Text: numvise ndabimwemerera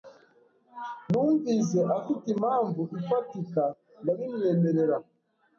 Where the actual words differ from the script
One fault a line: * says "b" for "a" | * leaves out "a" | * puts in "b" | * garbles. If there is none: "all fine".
* puts in "afite impamvu ifatika"